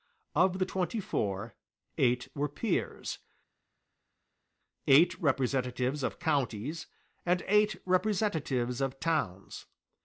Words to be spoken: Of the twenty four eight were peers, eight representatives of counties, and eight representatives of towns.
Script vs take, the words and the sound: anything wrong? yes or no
no